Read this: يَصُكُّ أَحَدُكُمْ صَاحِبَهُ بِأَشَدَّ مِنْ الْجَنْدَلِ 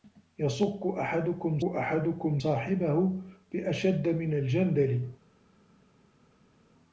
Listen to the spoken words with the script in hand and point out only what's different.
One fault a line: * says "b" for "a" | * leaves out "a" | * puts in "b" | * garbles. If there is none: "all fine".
* puts in "أَحَدُكُمْ"